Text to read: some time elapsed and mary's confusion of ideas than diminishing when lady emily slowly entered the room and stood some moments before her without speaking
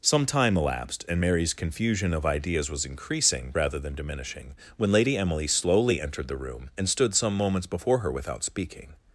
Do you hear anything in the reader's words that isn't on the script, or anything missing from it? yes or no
yes